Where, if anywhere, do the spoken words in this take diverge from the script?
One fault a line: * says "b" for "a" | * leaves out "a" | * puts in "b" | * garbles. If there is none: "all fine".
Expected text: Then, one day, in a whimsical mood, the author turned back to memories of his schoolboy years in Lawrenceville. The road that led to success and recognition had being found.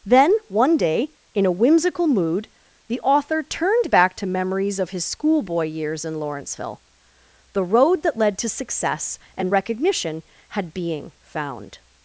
all fine